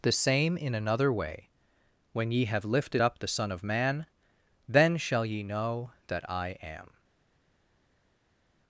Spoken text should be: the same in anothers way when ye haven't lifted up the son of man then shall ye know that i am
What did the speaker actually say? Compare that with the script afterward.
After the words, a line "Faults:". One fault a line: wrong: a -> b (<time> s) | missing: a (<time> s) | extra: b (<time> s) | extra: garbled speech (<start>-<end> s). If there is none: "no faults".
the same in another way when ye have lifted up the son of man then shall ye know that i am
Faults:
wrong: anothers -> another (0.7 s)
wrong: haven't -> have (2.5 s)